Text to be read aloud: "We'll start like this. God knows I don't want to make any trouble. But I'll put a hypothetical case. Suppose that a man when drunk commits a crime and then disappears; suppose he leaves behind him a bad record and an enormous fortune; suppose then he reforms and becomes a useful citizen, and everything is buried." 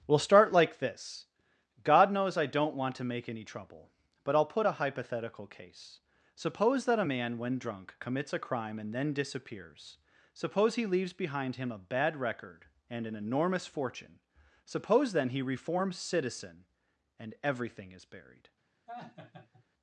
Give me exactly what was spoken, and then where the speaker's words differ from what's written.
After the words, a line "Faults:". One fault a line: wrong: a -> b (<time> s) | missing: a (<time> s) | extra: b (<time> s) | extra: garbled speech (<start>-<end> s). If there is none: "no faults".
"We'll start like this. God knows I don't want to make any trouble. But I'll put a hypothetical case. Suppose that a man when drunk commits a crime and then disappears; suppose he leaves behind him a bad record and an enormous fortune; suppose then he reforms citizen, and everything is buried."
Faults:
missing: and becomes a useful (16.0 s)